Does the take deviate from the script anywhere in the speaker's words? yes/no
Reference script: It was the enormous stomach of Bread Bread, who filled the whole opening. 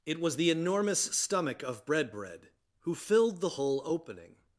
no